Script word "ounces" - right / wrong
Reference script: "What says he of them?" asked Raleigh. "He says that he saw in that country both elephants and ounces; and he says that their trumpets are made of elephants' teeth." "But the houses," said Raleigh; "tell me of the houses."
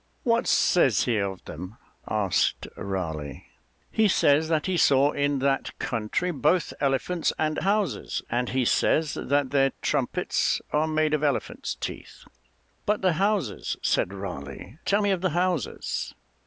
wrong